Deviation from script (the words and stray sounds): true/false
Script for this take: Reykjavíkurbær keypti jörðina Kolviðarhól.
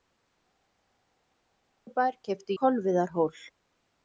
true